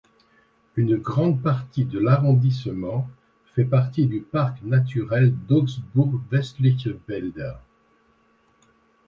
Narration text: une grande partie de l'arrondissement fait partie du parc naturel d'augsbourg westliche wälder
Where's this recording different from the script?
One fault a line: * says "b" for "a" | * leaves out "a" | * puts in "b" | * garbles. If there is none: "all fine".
all fine